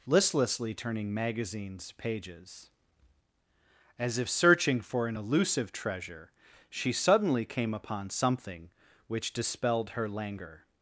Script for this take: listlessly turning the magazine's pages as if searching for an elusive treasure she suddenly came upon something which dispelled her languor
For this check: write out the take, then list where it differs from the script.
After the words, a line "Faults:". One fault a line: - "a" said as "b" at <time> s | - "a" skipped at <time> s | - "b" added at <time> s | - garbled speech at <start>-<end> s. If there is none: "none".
listlessly turning magazine's pages as if searching for an elusive treasure she suddenly came upon something which dispelled her languor
Faults:
- "the" skipped at 1.1 s